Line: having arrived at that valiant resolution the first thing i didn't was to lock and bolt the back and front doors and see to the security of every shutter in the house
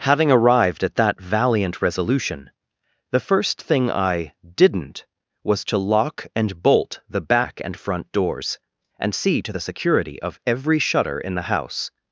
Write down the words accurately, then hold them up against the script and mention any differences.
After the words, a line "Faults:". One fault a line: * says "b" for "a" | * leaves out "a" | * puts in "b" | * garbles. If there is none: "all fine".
having arrived at that valiant resolution the first thing i didn't was to lock and bolt the back and front doors and see to the security of every shutter in the house
Faults:
all fine